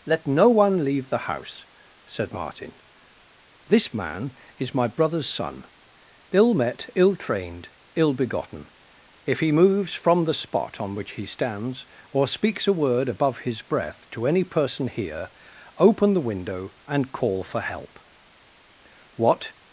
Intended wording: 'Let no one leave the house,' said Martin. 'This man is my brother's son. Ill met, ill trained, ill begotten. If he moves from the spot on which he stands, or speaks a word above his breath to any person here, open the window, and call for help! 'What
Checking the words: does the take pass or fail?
pass